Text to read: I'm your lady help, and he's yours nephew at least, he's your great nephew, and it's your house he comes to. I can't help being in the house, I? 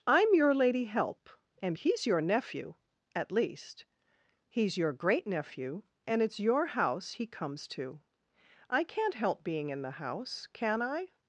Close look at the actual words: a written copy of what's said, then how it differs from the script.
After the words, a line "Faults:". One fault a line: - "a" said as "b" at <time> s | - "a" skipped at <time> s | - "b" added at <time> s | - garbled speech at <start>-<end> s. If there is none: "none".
I'm your lady help, and he's your nephew at least, he's your great nephew, and it's your house he comes to. I can't help being in the house, can I?
Faults:
- "yours" said as "your" at 2.1 s
- "can" added at 10.5 s